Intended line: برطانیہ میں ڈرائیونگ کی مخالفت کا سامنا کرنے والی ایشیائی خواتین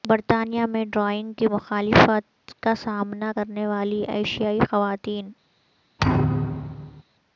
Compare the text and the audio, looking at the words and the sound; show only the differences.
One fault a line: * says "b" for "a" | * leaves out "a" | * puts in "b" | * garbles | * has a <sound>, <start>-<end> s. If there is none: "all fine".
* has a thud, 6.0-7.0 s